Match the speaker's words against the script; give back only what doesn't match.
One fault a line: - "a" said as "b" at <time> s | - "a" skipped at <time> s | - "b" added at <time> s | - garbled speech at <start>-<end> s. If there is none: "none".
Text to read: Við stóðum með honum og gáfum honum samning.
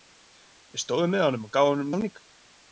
none